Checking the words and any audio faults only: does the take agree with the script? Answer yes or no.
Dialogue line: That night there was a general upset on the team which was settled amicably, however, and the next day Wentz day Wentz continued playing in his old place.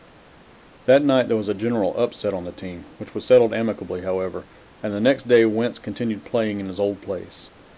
no